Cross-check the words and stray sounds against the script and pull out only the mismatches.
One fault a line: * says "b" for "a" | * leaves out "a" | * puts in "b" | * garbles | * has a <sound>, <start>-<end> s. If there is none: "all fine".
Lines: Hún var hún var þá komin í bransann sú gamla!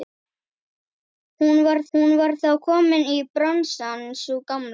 all fine